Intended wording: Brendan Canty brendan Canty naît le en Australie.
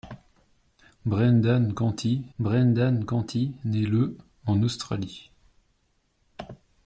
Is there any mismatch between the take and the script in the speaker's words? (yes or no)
no